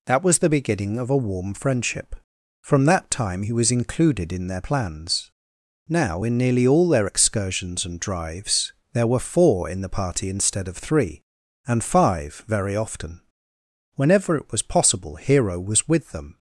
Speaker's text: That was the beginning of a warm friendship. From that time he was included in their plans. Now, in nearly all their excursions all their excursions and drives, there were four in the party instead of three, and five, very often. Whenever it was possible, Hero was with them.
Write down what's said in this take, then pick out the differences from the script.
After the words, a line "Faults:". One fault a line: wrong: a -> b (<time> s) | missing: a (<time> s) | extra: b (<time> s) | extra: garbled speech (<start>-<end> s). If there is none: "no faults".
That was the beginning of a warm friendship. From that time he was included in their plans. Now, in nearly all their excursions and drives, there were four in the party instead of three, and five, very often. Whenever it was possible, Hero was with them.
Faults:
missing: all their excursions (7.8 s)